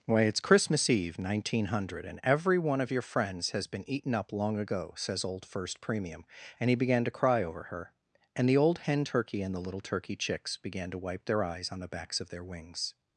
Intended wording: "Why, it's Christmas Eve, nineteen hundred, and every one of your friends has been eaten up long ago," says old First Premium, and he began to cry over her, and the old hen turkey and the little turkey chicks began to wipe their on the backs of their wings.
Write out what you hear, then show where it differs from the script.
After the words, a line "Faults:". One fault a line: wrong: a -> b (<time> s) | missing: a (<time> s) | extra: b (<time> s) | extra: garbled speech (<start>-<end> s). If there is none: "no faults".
"Why, it's Christmas Eve, nineteen hundred, and every one of your friends has been eaten up long ago," says old First Premium, and he began to cry over her, and the old hen turkey and the little turkey chicks began to wipe their eyes on the backs of their wings.
Faults:
extra: eyes (11.4 s)